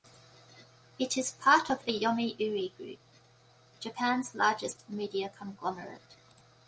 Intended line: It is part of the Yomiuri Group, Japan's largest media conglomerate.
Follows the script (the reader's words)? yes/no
yes